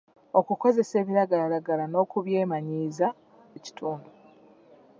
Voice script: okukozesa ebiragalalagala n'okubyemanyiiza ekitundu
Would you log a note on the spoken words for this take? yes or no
no